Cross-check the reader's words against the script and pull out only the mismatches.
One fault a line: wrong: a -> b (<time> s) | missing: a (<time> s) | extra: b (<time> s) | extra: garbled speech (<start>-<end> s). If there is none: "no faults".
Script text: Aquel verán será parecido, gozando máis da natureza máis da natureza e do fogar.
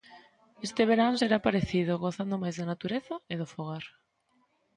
wrong: Aquel -> Este (0.7 s)
missing: máis da natureza (3.1 s)